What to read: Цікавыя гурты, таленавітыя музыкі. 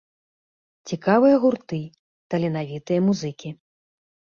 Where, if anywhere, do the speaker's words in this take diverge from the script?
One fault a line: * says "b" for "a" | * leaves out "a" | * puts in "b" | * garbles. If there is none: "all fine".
all fine